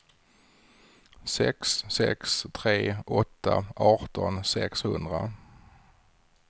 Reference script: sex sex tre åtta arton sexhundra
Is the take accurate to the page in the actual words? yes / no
yes